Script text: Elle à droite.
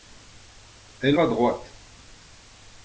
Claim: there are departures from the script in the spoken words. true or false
false